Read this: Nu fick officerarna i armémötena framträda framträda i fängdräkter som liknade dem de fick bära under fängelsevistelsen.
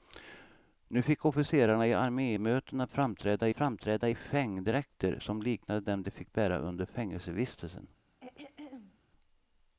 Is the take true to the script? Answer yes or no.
yes